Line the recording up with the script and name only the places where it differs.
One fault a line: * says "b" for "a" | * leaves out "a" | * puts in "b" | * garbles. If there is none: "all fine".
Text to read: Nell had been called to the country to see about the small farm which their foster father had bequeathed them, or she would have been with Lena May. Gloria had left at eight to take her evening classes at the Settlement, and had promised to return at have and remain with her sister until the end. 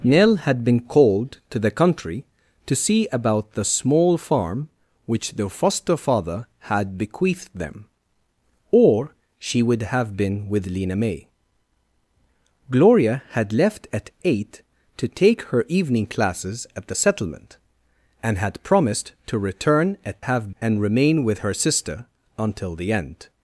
all fine